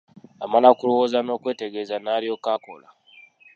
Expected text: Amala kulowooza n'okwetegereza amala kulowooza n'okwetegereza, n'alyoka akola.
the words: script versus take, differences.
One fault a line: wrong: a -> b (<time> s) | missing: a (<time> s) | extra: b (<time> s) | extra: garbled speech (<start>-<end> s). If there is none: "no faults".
missing: amala kulowooza n'okwetegereza (1.9 s)